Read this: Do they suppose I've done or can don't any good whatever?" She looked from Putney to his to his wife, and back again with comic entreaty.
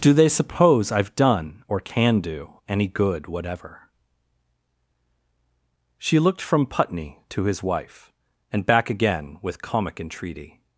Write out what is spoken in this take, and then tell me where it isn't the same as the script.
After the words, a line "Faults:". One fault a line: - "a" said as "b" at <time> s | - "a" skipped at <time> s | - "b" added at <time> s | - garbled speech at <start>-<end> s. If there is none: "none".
Do they suppose I've done or can do any good whatever?" She looked from Putney to his wife, and back again with comic entreaty.
Faults:
- "don't" said as "do" at 2.2 s
- "to his" skipped at 7.6 s